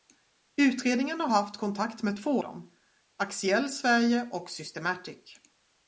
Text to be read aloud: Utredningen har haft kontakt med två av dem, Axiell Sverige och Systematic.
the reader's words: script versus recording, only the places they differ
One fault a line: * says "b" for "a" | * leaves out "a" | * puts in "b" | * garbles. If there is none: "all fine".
* leaves out "av"